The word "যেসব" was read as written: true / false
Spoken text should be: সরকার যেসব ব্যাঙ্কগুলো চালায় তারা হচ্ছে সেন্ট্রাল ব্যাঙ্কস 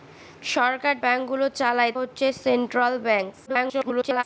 false